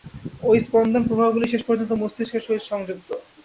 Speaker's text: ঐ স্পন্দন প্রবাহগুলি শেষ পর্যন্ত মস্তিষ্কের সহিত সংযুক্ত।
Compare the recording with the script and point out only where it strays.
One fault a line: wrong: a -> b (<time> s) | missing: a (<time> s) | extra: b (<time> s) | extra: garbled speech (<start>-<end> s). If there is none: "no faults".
no faults